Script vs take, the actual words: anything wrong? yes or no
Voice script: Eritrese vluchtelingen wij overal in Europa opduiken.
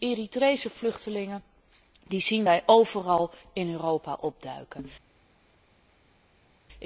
yes